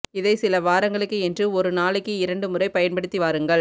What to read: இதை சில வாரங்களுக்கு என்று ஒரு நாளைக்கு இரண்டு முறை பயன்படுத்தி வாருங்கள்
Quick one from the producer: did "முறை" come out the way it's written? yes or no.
yes